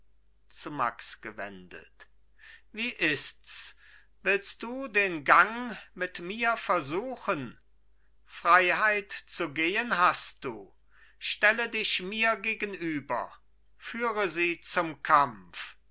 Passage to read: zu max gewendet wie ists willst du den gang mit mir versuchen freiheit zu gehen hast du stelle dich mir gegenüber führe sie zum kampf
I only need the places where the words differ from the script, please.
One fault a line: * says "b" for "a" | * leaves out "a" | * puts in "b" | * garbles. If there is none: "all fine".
all fine